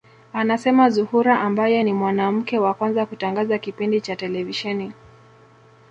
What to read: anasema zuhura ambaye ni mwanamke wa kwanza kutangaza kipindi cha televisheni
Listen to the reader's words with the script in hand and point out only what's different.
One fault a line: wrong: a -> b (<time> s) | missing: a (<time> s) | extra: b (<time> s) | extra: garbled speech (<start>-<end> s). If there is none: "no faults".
no faults